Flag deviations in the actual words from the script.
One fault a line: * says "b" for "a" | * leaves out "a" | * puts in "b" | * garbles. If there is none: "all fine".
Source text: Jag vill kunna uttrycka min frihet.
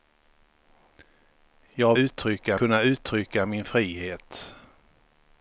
* says "uttrycka" for "vill"